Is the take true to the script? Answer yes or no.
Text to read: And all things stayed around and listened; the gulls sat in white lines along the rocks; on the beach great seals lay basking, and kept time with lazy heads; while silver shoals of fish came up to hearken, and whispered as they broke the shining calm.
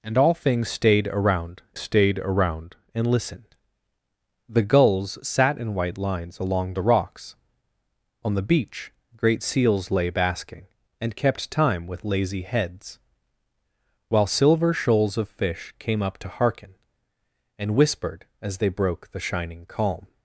no